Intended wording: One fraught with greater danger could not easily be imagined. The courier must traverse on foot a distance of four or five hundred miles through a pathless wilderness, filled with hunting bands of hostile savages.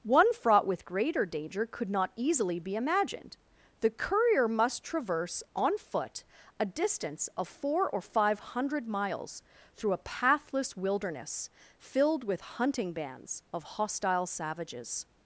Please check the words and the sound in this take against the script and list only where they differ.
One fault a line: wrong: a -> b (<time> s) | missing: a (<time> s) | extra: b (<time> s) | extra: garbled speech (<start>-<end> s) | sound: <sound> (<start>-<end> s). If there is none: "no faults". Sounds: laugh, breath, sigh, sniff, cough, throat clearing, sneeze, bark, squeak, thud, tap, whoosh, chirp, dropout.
no faults